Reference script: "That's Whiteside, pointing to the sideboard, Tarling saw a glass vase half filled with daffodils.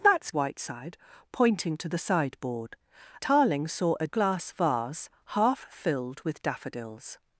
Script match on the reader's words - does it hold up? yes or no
yes